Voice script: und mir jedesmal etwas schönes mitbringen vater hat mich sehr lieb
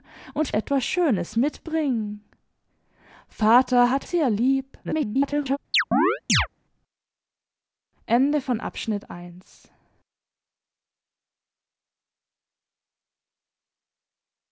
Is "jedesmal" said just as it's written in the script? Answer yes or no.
no